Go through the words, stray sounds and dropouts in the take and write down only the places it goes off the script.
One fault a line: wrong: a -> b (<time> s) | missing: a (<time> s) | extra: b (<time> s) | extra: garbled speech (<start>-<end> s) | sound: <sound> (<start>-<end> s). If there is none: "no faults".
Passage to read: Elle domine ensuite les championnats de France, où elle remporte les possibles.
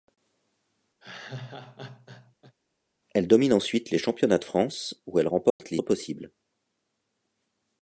sound: laugh (1.0-2.5 s)
sound: dropout (5.5-5.6 s)